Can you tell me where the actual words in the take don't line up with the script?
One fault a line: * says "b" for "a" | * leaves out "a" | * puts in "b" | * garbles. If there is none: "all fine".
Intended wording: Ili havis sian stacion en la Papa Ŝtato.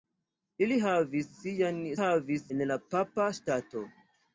* says "havis" for "stacion"